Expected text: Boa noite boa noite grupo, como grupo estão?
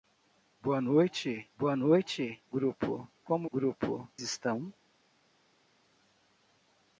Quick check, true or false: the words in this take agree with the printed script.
true